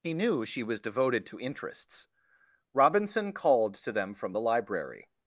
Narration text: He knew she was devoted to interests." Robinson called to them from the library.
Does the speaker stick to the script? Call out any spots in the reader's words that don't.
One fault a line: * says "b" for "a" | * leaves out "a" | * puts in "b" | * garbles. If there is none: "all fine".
all fine